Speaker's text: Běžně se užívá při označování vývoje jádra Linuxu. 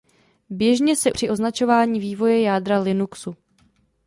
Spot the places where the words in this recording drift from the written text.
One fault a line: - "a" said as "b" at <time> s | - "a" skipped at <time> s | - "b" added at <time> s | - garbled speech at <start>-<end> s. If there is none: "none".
- "užívá" skipped at 1.1 s